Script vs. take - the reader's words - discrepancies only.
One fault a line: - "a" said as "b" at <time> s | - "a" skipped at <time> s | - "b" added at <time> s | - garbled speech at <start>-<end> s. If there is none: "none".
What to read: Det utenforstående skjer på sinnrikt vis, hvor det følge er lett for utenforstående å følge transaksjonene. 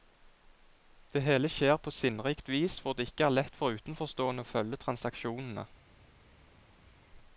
- "utenforstående" said as "hele" at 1.2 s
- "følge" said as "ikke" at 3.1 s